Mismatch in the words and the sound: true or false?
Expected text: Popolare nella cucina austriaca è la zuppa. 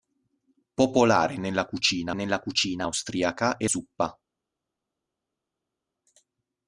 true